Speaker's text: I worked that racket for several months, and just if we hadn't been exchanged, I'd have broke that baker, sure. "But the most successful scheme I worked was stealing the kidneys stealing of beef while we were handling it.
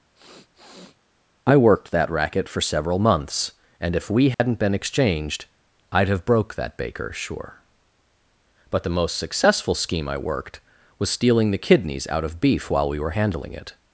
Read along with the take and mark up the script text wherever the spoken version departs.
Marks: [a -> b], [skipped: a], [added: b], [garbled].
I worked that racket for several months, and [skipped: just] if we hadn't been exchanged, I'd have broke that baker, sure. "But the most successful scheme I worked was stealing the kidneys [stealing -> out] of beef while we were handling it.